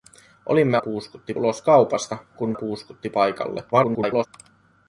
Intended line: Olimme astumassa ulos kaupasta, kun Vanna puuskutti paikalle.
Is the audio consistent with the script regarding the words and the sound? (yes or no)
no